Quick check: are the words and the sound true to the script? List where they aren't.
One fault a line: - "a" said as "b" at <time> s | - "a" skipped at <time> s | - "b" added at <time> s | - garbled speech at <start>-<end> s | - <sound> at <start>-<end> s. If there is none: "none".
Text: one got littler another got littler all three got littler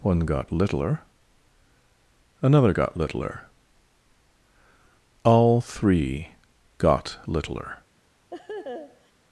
- laugh at 8.3-9.1 s